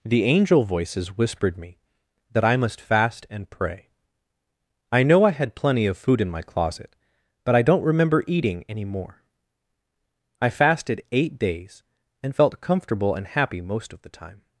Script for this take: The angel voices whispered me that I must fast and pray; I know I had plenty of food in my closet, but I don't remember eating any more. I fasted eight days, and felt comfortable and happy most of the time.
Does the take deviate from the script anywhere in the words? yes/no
no